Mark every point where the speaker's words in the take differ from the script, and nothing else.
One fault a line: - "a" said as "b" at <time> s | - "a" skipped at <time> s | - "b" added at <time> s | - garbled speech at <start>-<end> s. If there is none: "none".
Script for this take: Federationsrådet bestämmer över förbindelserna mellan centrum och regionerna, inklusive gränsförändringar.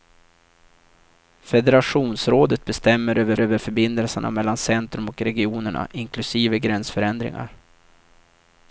- "över" added at 3.4 s